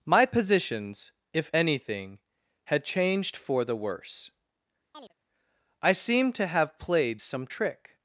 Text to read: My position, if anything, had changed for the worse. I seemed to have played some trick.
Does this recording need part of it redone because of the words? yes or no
yes